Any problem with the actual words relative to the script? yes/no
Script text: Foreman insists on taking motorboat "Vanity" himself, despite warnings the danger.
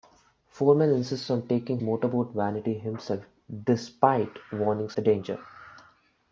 no